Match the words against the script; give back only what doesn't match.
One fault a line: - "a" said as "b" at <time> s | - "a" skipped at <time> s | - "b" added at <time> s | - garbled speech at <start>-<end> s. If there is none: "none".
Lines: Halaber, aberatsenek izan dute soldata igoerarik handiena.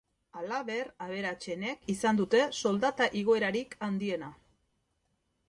none